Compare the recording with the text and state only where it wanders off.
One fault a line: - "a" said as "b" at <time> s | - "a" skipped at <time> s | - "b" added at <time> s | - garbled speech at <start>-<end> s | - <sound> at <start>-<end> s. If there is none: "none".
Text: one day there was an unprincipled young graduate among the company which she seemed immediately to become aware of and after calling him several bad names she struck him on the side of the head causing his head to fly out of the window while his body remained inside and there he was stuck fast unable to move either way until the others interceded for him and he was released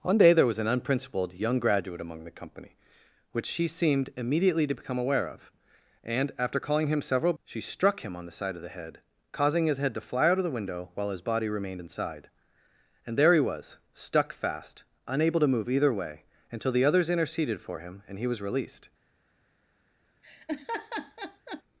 - "bad names" skipped at 7.3 s
- laugh at 20.2-21.6 s